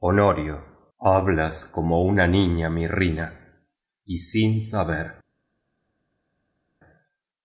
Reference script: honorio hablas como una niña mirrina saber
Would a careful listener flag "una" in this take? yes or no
no